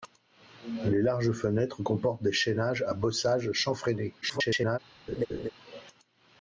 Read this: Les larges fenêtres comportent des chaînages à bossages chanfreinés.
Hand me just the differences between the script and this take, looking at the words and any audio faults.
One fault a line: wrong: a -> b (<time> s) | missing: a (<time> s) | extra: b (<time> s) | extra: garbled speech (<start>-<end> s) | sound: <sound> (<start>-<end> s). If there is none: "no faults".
extra: garbled speech (4.2-4.8 s)
sound: laugh (5.1-5.5 s)